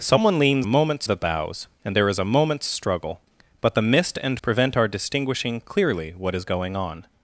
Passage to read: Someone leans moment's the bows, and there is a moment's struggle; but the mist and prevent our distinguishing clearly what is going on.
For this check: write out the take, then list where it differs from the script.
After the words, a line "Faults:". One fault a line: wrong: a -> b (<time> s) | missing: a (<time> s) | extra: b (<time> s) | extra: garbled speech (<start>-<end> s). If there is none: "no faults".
Someone leans moment's the bows, and there is a moment's struggle; but the mist and prevent our distinguishing clearly what is going on.
Faults:
no faults